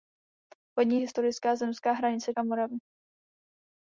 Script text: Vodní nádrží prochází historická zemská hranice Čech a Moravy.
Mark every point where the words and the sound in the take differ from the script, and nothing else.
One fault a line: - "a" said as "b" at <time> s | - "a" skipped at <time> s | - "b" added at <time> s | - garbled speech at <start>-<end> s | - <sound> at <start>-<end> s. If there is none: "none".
- "nádrží prochází" skipped at 1.0 s
- "Čech" skipped at 2.3 s